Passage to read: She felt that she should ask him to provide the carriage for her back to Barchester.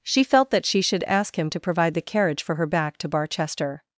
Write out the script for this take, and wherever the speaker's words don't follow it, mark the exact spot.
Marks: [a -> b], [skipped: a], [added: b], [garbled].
She felt that she should ask him to provide the carriage for her back to Barchester.